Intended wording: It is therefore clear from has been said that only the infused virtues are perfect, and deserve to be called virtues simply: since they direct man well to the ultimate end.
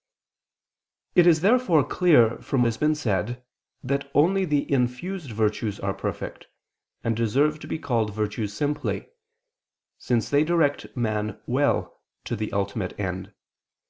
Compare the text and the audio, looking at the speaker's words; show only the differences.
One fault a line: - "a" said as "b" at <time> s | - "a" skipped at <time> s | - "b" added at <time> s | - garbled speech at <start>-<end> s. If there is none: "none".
none